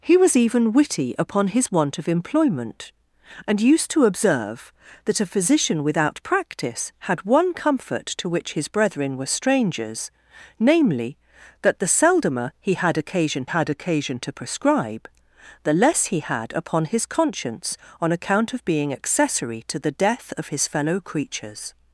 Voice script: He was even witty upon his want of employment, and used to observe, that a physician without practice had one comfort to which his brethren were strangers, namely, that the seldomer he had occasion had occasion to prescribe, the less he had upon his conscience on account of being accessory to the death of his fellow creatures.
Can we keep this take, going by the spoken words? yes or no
yes